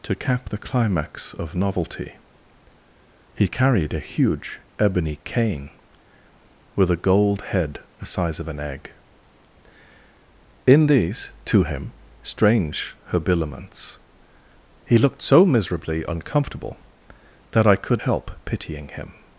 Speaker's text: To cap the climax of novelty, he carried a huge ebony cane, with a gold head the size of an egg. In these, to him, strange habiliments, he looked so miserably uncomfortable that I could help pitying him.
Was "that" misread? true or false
false